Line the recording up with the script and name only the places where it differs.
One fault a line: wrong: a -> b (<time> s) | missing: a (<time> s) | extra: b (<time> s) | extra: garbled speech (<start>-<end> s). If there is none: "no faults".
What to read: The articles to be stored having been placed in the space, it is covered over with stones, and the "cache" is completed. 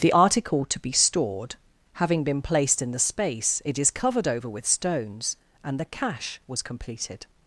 wrong: articles -> article (0.1 s)
wrong: is -> was (6.5 s)